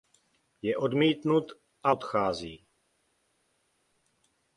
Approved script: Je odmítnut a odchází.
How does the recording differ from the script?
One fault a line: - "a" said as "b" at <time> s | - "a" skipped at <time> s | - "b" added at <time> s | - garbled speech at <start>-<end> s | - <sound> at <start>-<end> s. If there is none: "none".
none